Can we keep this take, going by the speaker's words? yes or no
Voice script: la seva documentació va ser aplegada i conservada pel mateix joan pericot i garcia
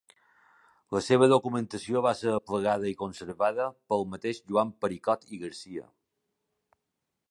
yes